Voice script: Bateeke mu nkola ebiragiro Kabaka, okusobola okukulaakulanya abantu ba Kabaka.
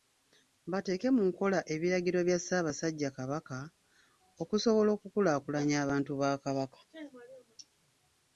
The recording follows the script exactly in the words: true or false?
false